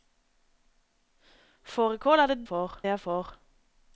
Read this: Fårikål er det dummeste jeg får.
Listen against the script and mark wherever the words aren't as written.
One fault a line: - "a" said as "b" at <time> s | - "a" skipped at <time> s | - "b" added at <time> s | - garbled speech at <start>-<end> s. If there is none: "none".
- "dummeste" said as "får" at 2.5 s